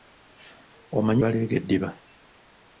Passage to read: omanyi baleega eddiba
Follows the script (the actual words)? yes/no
yes